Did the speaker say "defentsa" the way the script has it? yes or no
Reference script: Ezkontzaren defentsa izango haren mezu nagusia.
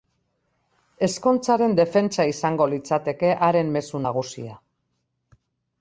yes